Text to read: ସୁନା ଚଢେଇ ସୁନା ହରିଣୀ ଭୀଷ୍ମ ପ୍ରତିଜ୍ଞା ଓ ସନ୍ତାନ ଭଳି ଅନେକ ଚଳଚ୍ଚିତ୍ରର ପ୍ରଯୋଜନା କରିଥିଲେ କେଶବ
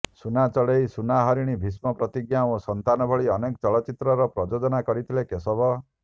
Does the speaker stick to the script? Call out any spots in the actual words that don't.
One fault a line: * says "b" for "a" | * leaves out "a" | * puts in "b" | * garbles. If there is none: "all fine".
all fine